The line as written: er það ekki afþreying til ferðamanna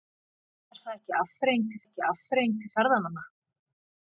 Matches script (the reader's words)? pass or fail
fail